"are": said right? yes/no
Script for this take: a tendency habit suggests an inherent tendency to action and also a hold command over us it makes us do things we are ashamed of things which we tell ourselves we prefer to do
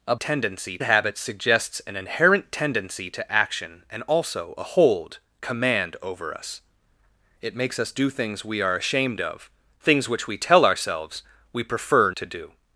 yes